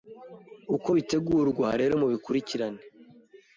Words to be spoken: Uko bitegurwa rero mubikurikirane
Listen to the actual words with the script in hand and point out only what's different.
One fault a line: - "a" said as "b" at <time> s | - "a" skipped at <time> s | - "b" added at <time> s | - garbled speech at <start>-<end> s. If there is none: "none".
none